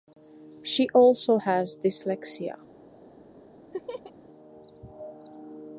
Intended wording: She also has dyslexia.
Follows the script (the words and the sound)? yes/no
no